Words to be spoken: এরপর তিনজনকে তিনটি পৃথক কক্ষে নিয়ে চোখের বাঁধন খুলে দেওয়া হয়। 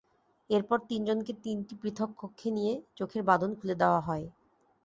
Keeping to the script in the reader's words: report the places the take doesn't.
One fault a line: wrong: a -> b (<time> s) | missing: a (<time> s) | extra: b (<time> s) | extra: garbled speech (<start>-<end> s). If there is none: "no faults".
no faults